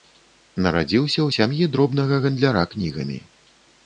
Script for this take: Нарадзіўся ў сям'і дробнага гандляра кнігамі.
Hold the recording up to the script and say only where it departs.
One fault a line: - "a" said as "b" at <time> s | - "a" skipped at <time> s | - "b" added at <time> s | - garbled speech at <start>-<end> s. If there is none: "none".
none